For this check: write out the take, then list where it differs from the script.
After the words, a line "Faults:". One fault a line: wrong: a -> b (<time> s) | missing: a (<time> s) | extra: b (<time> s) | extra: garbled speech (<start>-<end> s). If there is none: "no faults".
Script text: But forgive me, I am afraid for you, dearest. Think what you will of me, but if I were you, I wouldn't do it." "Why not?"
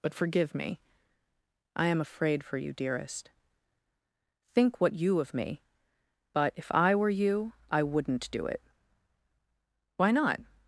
But forgive me, I am afraid for you, dearest. Think what you of me, but if I were you, I wouldn't do it." "Why not?"
Faults:
missing: will (5.2 s)